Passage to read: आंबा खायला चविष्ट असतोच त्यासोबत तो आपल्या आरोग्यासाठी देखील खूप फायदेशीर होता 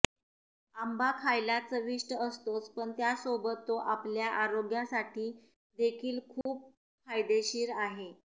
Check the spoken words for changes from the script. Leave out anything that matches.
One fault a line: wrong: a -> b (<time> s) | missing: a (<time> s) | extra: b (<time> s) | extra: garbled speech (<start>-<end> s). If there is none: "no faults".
extra: पण (2.7 s)
wrong: होता -> आहे (7.8 s)